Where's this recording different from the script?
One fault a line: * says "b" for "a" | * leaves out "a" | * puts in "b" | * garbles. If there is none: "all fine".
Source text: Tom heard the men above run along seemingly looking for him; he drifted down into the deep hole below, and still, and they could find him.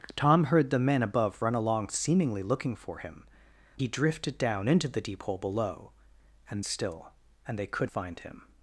all fine